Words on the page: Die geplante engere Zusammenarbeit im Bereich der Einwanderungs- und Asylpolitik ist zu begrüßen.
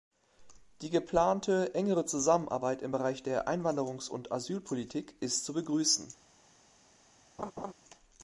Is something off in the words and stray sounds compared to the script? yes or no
yes